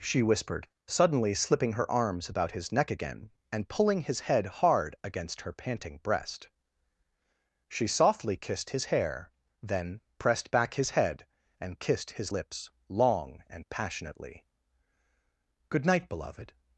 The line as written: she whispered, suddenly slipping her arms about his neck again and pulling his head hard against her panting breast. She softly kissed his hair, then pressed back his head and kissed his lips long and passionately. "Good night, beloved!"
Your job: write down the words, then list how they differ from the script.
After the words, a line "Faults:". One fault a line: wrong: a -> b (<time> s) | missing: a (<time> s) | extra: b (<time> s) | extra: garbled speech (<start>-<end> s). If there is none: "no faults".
she whispered, suddenly slipping her arms about his neck again and pulling his head hard against her panting breast. She softly kissed his hair, then pressed back his head and kissed his lips long and passionately. "Good night, beloved!"
Faults:
no faults